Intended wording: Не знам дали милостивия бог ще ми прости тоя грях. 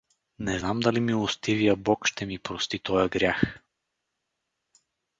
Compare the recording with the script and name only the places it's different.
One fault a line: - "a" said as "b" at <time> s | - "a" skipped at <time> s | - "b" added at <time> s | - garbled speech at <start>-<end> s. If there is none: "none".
none